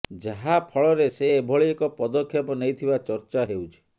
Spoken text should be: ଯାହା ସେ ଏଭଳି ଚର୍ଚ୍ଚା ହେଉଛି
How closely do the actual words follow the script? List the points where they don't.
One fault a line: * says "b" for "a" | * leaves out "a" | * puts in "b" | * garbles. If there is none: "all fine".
* puts in "ଫଳରେ"
* puts in "ଏକ ପଦକ୍ଷେପ ନେଇଥିବା"